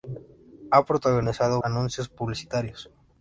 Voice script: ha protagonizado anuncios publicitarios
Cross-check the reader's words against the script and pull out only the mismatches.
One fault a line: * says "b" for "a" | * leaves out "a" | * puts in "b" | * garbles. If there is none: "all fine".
all fine